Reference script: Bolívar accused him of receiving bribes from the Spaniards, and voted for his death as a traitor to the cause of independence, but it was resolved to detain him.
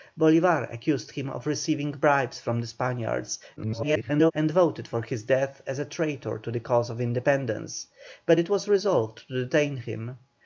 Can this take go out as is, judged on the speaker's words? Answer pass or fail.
fail